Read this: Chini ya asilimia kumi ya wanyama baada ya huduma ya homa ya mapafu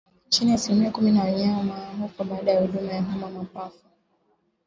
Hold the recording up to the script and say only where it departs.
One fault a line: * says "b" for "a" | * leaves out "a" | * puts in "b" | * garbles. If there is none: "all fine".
* puts in "hufa"